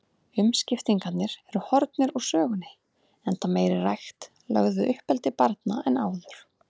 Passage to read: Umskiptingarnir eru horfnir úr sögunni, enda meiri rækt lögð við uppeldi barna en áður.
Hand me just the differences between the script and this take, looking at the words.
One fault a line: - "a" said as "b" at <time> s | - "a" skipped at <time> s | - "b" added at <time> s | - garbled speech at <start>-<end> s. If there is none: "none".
none